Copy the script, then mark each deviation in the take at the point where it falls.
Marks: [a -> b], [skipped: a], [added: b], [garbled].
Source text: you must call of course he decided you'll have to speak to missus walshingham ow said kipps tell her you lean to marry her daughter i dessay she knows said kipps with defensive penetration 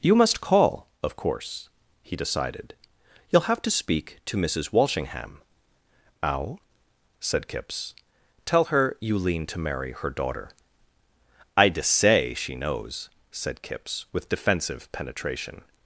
you must call of course he decided you'll have to speak to missus walshingham ow said kipps tell her you lean to marry her daughter i dessay she knows said kipps with defensive penetration